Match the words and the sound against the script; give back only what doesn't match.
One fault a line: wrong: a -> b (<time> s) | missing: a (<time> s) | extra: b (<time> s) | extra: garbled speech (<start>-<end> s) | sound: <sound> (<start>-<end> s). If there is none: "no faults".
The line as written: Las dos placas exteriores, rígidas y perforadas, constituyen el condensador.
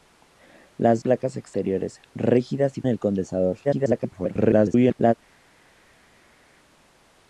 missing: dos (1.0 s)
missing: perforadas constituyen (2.8 s)
extra: garbled speech (3.6-5.1 s)